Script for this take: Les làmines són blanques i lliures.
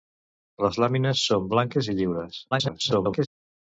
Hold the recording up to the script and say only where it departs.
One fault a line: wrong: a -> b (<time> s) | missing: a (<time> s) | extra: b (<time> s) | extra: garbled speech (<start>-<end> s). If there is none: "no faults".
extra: garbled speech (2.5-3.3 s)